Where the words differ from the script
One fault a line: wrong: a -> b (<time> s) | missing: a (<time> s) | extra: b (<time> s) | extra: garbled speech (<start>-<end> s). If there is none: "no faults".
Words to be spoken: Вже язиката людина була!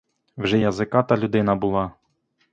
no faults